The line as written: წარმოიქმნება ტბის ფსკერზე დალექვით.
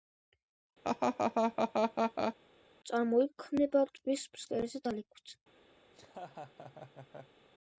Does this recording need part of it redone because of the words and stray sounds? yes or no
yes